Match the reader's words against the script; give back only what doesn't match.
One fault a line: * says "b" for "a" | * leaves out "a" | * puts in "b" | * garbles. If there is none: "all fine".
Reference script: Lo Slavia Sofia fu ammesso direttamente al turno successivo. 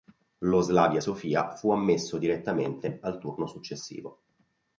all fine